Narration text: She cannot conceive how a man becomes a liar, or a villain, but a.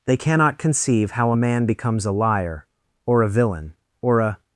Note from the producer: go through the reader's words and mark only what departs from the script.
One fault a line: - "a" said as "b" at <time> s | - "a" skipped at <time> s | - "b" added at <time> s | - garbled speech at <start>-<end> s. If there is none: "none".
- "She" said as "They" at 0.1 s
- "but" said as "or" at 4.0 s